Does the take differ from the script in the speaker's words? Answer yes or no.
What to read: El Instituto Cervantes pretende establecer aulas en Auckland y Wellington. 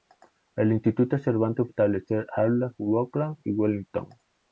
yes